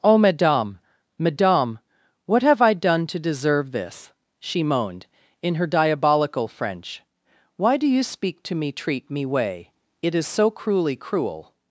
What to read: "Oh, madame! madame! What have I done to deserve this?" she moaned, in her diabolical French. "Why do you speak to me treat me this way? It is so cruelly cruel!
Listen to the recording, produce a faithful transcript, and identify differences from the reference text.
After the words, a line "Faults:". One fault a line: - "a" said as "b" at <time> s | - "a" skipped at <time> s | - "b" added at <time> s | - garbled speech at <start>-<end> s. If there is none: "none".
"Oh, madame! madame! What have I done to deserve this?" she moaned, in her diabolical French. "Why do you speak to me treat me way? It is so cruelly cruel!
Faults:
- "this" skipped at 9.3 s